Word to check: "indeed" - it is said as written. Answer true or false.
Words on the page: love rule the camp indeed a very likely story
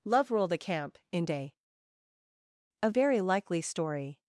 false